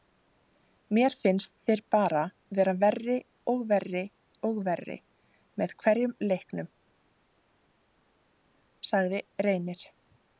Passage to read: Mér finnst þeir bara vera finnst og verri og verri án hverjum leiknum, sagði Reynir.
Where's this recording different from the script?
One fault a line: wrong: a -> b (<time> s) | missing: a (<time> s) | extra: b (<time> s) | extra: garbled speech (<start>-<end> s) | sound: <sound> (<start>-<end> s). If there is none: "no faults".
wrong: finnst -> verri (2.9 s)
wrong: án -> með (5.6 s)